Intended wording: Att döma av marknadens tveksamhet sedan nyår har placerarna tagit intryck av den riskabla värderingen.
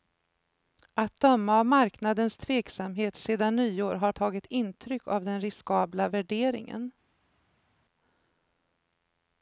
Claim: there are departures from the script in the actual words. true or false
true